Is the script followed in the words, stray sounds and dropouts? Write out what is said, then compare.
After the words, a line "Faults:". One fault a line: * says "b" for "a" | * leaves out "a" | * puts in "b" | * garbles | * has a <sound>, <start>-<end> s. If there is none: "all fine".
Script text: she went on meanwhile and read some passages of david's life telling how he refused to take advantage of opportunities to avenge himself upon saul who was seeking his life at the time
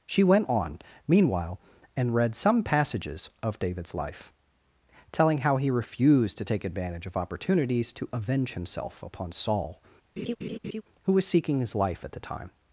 she went on meanwhile and read some passages of david's life telling how he refused to take advantage of opportunities to avenge himself upon saul who was seeking his life at the time
Faults:
* has a laugh, 10.2-10.8 s